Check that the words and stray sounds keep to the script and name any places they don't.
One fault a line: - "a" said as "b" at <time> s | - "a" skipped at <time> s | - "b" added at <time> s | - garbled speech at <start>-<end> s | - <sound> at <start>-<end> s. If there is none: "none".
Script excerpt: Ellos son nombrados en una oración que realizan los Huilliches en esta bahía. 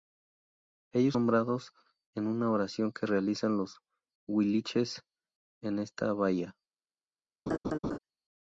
- "son" skipped at 1.1 s
- laugh at 7.5-8.0 s